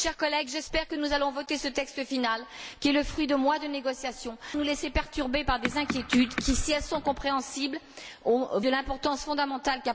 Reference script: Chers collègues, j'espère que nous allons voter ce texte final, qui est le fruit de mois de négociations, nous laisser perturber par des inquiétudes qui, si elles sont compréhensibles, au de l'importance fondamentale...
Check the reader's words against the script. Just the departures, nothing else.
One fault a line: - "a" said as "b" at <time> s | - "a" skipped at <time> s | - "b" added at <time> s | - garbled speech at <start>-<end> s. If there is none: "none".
none